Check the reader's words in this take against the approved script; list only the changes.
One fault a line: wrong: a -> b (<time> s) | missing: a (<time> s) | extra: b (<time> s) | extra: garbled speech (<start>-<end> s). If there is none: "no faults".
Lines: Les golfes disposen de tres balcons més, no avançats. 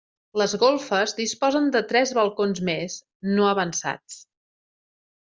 no faults